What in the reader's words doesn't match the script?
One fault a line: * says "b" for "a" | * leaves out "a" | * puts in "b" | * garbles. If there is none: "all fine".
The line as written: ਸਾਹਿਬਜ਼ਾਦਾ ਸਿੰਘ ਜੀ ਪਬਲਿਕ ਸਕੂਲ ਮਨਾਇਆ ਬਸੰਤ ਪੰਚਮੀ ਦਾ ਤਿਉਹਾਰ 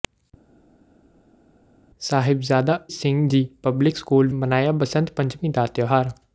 all fine